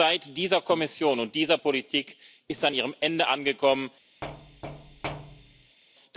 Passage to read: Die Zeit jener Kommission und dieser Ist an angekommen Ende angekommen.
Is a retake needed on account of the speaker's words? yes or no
yes